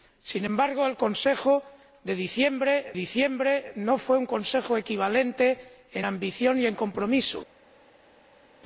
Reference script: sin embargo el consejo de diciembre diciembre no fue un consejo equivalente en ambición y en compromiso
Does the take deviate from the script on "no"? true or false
false